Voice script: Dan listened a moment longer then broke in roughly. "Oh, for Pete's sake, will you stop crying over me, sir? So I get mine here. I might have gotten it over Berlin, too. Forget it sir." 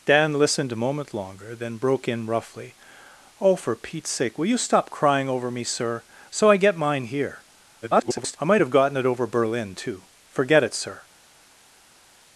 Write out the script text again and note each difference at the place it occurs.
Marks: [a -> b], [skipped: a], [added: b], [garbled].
Dan listened a moment longer then broke in roughly. "Oh, for Pete's sake, will you stop crying over me, sir? So I get mine here. [garbled] I might have gotten it over Berlin, too. Forget it sir."